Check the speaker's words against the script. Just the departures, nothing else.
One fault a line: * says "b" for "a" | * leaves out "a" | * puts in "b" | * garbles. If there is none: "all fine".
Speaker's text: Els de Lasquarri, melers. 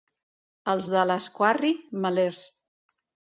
all fine